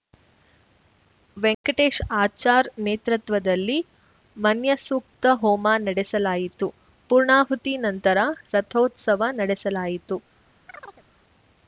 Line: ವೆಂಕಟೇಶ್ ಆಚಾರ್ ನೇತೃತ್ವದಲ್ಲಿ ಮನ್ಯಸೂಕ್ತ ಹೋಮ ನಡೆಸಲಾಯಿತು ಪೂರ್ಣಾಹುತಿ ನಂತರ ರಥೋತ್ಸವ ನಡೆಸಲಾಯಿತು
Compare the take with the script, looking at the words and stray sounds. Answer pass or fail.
fail